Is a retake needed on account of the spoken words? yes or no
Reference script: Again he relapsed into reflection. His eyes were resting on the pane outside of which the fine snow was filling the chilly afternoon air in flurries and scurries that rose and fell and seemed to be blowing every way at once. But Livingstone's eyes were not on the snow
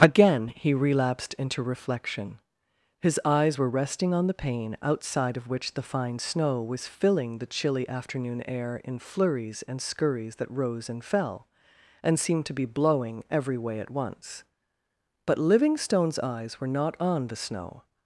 no